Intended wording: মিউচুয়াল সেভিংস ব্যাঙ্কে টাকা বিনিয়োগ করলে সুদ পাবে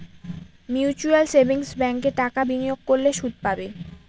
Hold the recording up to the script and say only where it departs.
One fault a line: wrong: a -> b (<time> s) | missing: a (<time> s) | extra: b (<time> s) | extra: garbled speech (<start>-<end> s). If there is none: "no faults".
no faults